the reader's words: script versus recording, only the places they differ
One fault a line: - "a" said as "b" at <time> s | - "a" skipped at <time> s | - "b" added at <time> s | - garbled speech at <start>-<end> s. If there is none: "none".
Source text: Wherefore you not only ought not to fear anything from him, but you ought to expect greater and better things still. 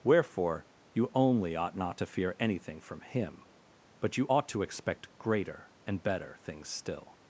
- "not" skipped at 1.1 s